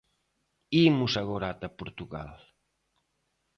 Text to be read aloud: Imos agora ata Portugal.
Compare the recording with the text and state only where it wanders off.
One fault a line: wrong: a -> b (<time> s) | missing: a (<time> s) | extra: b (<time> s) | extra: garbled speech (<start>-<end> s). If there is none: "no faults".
no faults